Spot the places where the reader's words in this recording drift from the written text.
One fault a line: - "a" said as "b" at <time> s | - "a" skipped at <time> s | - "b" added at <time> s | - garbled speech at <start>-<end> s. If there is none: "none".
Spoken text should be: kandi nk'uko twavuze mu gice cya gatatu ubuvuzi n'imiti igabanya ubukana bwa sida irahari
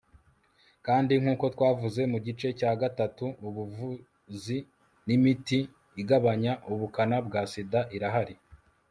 none